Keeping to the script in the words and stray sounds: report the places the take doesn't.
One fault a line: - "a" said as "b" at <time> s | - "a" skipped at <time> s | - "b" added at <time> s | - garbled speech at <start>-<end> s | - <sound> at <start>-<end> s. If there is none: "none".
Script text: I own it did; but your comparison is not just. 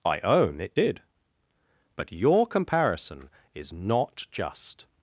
none